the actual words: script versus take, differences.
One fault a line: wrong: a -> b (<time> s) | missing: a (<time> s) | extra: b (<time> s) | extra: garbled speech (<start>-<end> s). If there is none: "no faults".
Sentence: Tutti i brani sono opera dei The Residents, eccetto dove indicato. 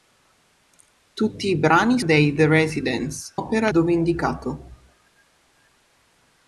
missing: sono opera (2.0 s)
wrong: eccetto -> opera (3.3 s)